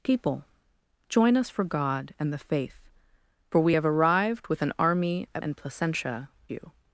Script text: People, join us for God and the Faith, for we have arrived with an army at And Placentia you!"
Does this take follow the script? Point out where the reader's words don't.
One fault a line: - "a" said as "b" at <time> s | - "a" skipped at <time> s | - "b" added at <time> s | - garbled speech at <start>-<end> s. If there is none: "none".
none